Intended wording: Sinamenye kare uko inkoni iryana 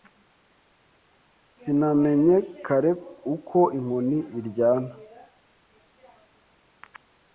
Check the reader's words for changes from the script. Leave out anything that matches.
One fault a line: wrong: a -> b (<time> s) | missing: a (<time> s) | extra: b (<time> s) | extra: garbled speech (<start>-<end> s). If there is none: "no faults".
no faults